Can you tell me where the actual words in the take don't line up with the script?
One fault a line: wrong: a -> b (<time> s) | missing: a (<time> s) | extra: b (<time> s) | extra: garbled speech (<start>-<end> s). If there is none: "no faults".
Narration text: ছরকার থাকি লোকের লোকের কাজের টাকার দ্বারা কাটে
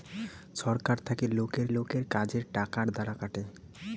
no faults